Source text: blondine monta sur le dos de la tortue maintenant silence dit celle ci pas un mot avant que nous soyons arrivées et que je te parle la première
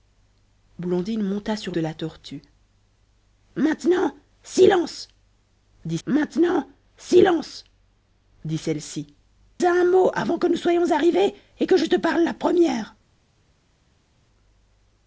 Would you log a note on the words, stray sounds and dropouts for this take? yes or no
yes